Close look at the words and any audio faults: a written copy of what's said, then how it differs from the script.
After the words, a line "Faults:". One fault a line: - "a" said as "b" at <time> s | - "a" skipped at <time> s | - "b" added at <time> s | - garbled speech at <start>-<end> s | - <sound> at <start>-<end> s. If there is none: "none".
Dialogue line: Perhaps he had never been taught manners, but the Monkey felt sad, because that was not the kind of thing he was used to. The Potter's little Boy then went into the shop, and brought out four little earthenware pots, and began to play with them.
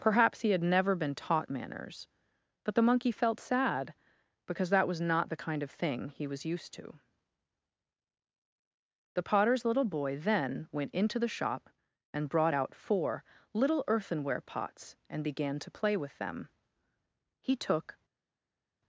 Perhaps he had never been taught manners, but the Monkey felt sad, because that was not the kind of thing he was used to. The Potter's little Boy then went into the shop, and brought out four little earthenware pots, and began to play with them. He took
Faults:
- "He took" added at 17.4 s